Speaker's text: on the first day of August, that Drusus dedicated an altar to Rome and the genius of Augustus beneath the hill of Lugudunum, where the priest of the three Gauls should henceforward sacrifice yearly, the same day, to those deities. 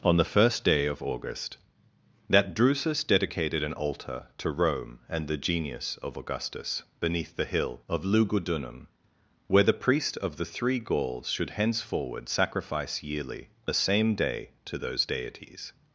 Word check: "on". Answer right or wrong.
right